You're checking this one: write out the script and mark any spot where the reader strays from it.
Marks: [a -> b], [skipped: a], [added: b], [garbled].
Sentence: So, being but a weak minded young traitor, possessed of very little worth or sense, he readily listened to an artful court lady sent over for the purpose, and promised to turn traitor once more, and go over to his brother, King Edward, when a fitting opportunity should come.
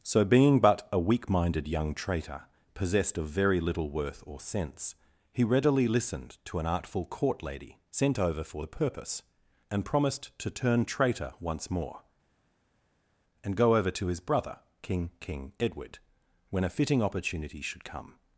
So, being but a weak minded young traitor, possessed of very little worth or sense, he readily listened to an artful court lady sent over for the purpose, and promised to turn traitor once more, and go over to his brother, King [added: King] Edward, when a fitting opportunity should come.